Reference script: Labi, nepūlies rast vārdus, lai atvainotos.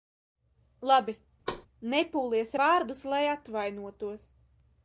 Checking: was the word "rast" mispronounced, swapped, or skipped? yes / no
yes